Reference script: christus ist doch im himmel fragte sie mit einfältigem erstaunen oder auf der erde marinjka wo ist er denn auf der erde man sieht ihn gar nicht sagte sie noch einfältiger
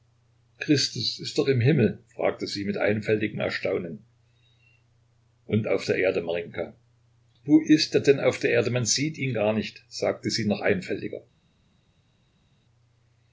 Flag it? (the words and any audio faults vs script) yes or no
yes